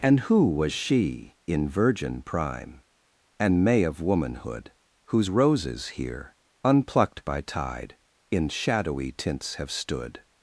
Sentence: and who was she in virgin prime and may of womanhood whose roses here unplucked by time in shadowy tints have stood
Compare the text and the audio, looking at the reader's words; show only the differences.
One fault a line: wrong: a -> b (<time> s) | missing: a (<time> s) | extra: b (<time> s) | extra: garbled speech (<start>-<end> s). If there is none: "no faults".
wrong: time -> tide (7.4 s)